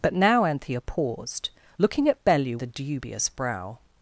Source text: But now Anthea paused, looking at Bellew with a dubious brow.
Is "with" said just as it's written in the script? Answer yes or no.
no